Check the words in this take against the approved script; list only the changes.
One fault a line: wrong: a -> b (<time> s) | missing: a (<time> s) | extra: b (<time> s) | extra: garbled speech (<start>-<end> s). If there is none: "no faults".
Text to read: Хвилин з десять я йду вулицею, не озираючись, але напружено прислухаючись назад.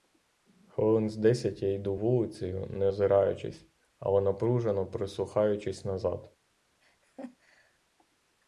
no faults